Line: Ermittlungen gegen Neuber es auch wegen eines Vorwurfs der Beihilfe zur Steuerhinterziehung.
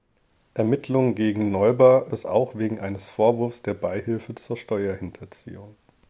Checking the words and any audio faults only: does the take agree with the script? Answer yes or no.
yes